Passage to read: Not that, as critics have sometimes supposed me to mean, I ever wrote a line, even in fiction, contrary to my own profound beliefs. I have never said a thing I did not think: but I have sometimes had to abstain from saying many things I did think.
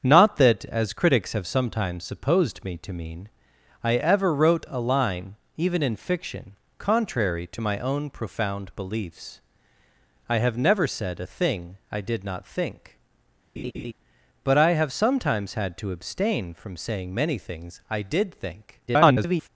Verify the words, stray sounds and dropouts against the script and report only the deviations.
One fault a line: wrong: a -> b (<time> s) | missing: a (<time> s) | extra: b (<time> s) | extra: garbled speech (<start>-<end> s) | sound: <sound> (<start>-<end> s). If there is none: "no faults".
sound: laugh (13.6-13.9 s)
extra: garbled speech (18.9-19.5 s)